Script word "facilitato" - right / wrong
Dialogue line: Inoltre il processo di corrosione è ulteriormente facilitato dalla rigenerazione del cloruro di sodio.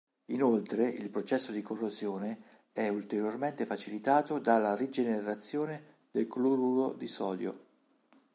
right